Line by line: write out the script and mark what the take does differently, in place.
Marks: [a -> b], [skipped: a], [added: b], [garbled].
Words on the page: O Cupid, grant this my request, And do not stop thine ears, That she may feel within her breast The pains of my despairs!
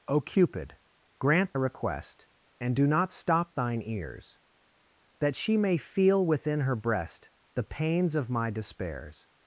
O Cupid, grant [skipped: this my] request, And do not stop thine ears, That she may feel within her breast The pains of my despairs!